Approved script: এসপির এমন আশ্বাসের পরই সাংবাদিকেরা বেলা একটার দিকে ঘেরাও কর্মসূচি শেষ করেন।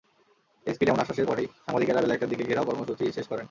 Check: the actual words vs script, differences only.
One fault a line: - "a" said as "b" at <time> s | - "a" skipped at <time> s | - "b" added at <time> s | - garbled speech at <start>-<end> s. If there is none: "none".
none